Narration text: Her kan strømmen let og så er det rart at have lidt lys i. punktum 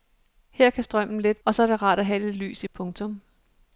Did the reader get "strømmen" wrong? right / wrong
right